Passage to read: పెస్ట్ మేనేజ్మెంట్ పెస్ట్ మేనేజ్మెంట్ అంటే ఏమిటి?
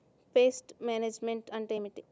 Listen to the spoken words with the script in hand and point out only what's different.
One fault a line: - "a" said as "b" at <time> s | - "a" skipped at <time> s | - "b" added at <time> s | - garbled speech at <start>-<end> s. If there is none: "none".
- "పెస్ట్ మేనేజ్మెంట్" skipped at 1.5 s